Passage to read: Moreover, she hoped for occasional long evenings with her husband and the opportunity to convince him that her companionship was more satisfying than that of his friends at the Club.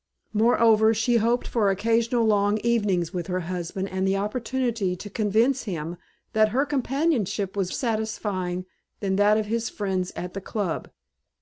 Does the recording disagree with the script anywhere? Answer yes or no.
yes